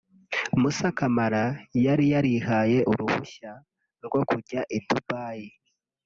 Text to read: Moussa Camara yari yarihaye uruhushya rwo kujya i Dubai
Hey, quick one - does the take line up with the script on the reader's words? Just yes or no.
yes